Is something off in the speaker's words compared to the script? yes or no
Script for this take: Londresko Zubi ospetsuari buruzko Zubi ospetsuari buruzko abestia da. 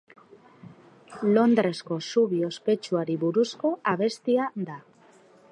yes